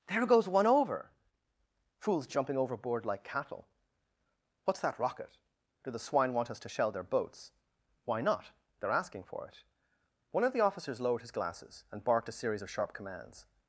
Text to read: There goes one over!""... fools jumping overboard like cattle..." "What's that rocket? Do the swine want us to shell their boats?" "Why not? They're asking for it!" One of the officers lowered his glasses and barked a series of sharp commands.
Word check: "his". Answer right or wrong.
right